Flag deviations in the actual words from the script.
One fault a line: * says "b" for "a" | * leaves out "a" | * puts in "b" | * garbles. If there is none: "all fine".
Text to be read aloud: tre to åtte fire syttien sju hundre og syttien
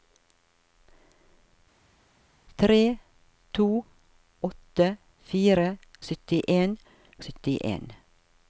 * leaves out "sju hundre"